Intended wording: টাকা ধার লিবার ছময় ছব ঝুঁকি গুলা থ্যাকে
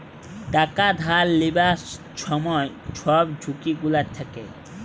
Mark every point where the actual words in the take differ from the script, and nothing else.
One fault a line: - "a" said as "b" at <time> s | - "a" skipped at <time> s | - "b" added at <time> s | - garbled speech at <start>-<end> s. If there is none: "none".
none